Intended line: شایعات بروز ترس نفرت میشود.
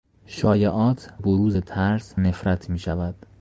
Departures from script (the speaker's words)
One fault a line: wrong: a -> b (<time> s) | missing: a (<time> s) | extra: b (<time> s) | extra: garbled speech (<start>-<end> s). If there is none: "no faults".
no faults